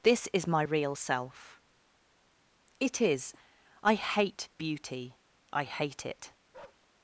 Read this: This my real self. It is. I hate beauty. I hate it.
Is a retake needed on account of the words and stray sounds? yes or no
yes